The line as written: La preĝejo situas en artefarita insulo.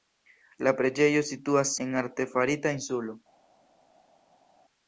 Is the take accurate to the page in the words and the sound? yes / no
yes